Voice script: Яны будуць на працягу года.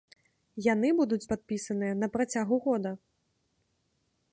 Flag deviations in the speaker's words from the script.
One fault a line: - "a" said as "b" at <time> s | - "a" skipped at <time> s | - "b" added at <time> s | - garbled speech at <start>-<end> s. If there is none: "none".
- "падпісаныя" added at 1.3 s